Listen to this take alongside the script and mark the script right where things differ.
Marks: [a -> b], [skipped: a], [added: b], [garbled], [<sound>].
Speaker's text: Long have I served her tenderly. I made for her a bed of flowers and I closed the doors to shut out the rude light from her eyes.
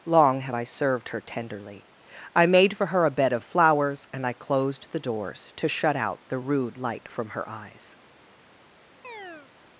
Long have I served her tenderly. I made for her a bed of flowers and I closed the doors to shut out the rude light from her eyes. [chirp]